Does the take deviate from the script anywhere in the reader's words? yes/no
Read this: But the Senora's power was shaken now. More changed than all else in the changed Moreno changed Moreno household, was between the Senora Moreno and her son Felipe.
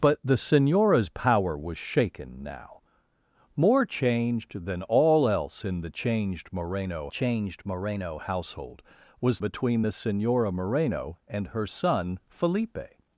no